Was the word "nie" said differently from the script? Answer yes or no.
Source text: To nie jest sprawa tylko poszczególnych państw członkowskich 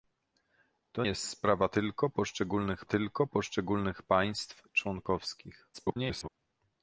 yes